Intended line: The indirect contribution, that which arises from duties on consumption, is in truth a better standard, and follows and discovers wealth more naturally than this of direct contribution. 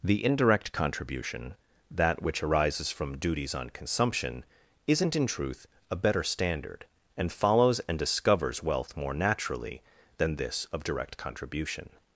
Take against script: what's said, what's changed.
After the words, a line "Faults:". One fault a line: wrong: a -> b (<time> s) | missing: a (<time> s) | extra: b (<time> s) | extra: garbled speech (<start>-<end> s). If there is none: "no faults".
The indirect contribution, that which arises from duties on consumption, isn't in truth a better standard, and follows and discovers wealth more naturally than this of direct contribution.
Faults:
wrong: is -> isn't (4.9 s)